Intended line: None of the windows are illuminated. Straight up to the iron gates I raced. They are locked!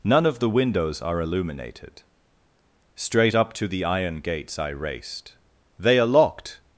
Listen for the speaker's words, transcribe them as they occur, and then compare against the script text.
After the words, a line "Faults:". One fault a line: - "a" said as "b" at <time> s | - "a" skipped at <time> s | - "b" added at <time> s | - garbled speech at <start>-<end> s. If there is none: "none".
None of the windows are illuminated. Straight up to the iron gates I raced. They are locked!
Faults:
none